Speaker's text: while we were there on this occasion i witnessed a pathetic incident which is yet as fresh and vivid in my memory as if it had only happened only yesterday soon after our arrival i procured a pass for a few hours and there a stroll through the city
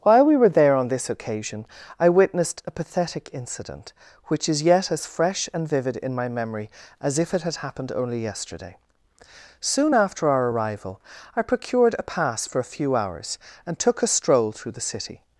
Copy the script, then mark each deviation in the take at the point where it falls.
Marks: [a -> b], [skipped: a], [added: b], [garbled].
while we were there on this occasion i witnessed a pathetic incident which is yet as fresh and vivid in my memory as if it had [skipped: only] happened only yesterday soon after our arrival i procured a pass for a few hours and [there -> took] a stroll through the city